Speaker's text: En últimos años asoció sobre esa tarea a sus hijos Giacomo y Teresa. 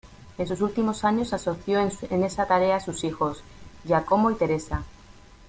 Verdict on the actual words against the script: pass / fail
fail